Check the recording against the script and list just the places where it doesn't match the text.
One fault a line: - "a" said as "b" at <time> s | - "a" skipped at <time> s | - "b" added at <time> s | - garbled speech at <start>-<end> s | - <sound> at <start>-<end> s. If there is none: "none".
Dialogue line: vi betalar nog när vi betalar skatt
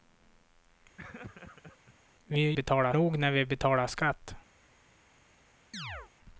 - laugh at 1.0-1.9 s
- chirp at 5.7-6.1 s